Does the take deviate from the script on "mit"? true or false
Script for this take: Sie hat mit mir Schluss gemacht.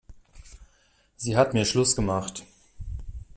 true